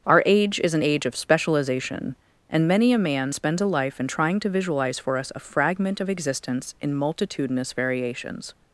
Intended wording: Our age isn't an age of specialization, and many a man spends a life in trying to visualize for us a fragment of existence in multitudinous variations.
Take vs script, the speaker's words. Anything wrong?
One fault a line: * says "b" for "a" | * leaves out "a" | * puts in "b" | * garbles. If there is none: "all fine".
* says "is" for "isn't"